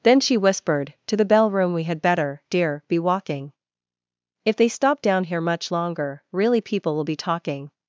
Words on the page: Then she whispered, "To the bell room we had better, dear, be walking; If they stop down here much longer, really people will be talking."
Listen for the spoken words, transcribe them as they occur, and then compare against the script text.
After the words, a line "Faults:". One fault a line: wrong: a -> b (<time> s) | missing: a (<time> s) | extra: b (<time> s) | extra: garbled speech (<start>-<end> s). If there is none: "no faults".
Then she whispered, "To the bell room we had better, dear, be walking; If they stop down here much longer, really people will be talking."
Faults:
no faults